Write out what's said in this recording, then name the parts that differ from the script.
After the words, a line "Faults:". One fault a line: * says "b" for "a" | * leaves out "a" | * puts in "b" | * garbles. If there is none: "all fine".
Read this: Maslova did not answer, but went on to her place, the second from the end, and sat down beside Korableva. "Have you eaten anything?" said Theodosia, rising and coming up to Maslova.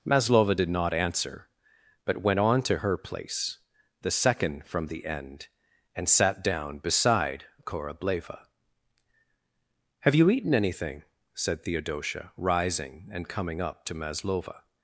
Maslova did not answer, but went on to her place, the second from the end, and sat down beside Korableva. "Have you eaten anything?" said Theodosia, rising and coming up to Maslova.
Faults:
all fine